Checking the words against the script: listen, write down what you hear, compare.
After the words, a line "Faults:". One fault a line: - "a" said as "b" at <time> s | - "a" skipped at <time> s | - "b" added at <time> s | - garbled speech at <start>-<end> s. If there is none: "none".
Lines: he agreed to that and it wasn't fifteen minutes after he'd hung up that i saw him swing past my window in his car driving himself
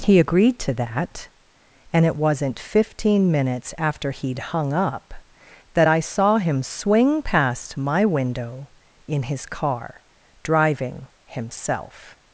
he agreed to that and it wasn't fifteen minutes after he'd hung up that i saw him swing past my window in his car driving himself
Faults:
none